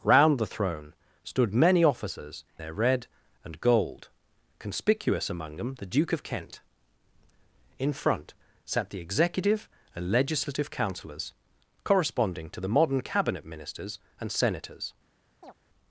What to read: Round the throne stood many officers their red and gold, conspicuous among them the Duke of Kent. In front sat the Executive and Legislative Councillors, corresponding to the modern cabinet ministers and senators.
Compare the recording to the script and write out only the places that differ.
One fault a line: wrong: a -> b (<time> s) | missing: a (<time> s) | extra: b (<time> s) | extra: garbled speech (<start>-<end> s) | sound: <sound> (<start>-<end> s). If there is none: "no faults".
sound: chirp (15.4-15.5 s)